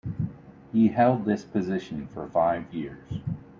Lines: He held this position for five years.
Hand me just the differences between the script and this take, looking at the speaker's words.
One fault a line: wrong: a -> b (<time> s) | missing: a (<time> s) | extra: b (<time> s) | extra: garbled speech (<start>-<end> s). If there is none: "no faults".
no faults